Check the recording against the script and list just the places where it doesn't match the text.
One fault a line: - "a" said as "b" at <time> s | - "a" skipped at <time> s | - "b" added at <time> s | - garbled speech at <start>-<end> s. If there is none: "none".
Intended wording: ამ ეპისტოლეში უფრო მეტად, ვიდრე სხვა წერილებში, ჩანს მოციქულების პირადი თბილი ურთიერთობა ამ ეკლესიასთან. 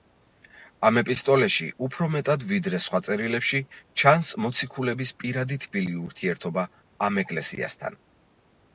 none